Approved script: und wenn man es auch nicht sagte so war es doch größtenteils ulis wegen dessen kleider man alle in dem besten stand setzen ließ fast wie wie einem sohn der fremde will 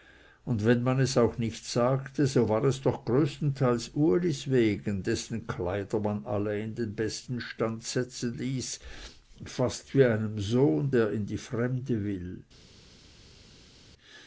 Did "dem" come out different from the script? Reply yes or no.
yes